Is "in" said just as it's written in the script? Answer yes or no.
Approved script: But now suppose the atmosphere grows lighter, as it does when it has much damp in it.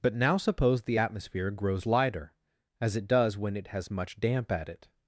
no